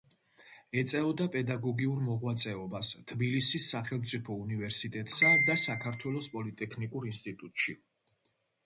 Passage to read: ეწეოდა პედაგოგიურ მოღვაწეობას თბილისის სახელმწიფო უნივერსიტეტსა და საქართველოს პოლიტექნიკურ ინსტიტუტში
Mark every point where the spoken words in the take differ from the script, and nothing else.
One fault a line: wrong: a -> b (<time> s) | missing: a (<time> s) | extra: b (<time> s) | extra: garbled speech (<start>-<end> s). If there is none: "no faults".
no faults